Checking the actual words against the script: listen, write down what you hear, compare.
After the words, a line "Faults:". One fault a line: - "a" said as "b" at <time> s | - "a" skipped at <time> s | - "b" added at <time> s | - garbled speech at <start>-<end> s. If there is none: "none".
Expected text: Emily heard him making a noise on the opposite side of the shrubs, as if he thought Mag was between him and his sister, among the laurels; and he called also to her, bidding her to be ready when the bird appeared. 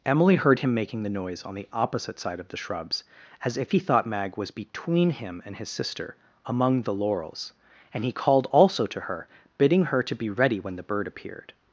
Emily heard him making the noise on the opposite side of the shrubs, as if he thought Mag was between him and his sister, among the laurels; and he called also to her, bidding her to be ready when the bird appeared.
Faults:
- "a" said as "the" at 1.0 s